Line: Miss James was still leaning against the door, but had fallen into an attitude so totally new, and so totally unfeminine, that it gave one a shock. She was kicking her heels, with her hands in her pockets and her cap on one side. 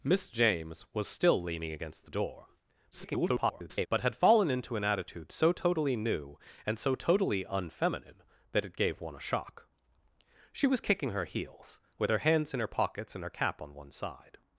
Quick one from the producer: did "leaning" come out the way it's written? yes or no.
yes